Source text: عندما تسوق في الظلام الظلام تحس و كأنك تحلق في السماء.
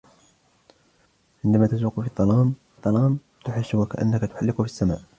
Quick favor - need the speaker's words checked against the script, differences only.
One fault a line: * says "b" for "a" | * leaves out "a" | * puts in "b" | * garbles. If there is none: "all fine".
all fine